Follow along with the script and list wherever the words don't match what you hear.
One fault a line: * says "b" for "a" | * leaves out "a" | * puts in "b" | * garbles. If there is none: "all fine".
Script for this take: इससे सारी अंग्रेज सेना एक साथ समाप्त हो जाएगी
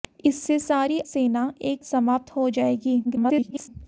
* leaves out "अंग्रेज"
* leaves out "साथ"
* garbles